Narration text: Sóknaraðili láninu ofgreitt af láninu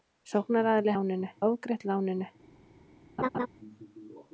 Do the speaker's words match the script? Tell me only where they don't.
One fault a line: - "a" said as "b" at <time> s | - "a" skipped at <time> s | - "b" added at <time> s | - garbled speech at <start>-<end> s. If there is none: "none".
none